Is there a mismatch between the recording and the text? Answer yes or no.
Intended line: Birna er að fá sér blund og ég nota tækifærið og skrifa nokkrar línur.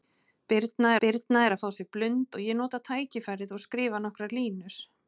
yes